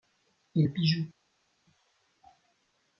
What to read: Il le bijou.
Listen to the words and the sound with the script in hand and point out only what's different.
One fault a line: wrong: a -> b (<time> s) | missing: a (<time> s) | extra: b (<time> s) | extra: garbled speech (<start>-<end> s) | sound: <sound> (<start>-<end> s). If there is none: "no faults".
no faults